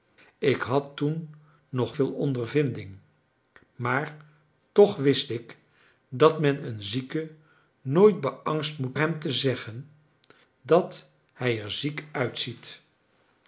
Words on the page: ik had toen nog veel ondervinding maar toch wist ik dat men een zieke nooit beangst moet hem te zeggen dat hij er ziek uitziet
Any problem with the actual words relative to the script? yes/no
no